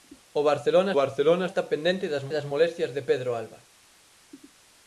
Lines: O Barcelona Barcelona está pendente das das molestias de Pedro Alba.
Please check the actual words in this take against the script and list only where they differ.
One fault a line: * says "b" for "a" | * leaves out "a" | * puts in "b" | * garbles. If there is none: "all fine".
all fine